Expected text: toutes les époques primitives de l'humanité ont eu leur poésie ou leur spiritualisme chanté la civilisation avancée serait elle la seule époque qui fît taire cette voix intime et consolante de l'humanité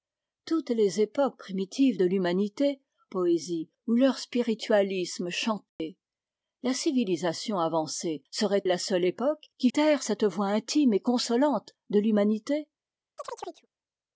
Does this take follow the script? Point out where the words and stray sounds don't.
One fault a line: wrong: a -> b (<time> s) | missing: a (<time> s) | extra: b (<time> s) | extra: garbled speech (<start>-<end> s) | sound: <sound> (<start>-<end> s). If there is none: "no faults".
missing: ont eu leur (2.8 s)
sound: dropout (5.7-5.8 s)
missing: elle (8.6 s)
missing: fît (9.7 s)
sound: chirp (13.2-13.7 s)